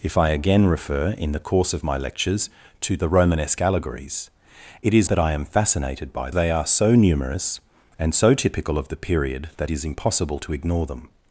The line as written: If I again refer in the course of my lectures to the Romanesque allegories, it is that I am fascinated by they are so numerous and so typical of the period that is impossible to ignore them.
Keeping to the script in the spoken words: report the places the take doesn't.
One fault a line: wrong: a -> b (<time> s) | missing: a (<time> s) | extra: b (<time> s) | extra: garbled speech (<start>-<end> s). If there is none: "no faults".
no faults